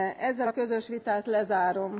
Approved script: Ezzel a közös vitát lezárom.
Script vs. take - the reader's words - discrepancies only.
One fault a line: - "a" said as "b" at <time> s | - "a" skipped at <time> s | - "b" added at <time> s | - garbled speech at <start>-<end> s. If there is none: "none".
none